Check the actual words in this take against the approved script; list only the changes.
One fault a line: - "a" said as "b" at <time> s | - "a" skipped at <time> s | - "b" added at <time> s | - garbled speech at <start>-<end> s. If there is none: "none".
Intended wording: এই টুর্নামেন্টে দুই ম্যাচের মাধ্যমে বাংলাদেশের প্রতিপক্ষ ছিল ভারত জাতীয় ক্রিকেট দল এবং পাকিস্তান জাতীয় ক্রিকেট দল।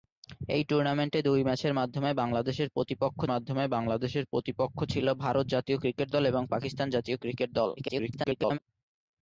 - "মাধ্যমে বাংলাদেশের প্রতিপক্ষ" added at 3.3 s
- garbled speech at 7.8-8.6 s